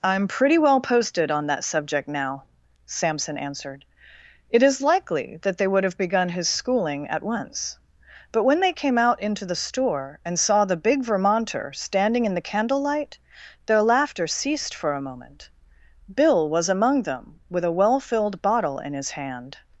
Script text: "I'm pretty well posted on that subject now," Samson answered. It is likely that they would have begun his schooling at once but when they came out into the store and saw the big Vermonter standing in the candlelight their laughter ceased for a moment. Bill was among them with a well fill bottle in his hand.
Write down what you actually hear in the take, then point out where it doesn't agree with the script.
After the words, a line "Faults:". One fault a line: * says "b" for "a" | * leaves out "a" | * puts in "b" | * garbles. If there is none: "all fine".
"I'm pretty well posted on that subject now," Samson answered. It is likely that they would have begun his schooling at once but when they came out into the store and saw the big Vermonter standing in the candlelight their laughter ceased for a moment. Bill was among them with a well filled bottle in his hand.
Faults:
* says "filled" for "fill"